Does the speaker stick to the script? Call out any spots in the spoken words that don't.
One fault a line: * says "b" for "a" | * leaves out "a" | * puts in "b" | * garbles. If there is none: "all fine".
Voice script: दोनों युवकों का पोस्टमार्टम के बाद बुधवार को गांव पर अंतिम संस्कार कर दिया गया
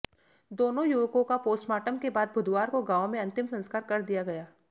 * says "में" for "पर"